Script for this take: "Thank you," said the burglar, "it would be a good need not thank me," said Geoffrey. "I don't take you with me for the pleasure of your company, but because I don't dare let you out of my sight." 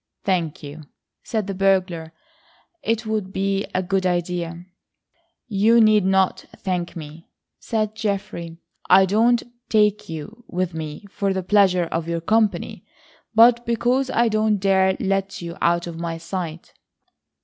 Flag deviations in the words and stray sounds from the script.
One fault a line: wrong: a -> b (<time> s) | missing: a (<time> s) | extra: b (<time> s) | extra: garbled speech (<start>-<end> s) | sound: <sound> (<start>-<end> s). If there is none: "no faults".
extra: idea You (4.1 s)